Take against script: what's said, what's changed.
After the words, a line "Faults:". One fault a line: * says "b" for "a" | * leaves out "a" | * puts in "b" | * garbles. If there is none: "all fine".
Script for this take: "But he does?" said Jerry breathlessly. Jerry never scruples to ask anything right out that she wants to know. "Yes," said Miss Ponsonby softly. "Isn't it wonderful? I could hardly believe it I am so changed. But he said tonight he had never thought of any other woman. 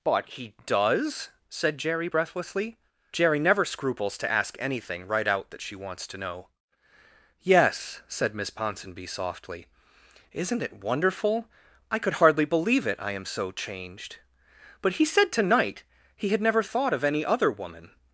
"But he does?" said Jerry breathlessly. Jerry never scruples to ask anything right out that she wants to know. "Yes," said Miss Ponsonby softly. "Isn't it wonderful? I could hardly believe it I am so changed. But he said tonight he had never thought of any other woman.
Faults:
all fine